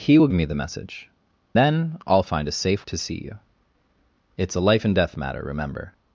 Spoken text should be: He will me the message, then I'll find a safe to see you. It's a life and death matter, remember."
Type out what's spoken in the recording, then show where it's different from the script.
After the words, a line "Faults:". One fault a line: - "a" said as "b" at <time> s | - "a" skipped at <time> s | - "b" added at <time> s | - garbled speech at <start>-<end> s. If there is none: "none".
He will me the message, then I'll find a safe to see you. It's a life and death matter, remember."
Faults:
none